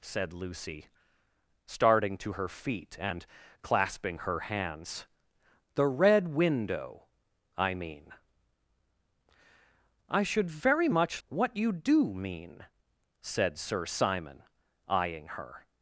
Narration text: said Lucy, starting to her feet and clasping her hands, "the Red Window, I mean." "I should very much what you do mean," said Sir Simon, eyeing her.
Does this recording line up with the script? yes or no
yes